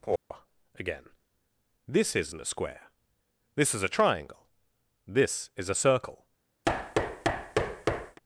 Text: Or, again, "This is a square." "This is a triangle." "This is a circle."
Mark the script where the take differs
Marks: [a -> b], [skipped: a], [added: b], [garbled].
Or, again, "This [is -> isn't] a square." "This is a triangle." "This is a circle."